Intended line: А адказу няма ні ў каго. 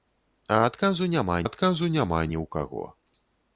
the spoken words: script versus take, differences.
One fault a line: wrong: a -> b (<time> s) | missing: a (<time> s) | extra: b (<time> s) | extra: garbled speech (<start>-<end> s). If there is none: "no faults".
extra: адказу няма (1.5 s)